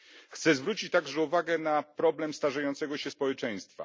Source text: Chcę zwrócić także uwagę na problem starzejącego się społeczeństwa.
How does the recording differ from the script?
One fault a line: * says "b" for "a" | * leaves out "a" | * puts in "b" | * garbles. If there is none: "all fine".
all fine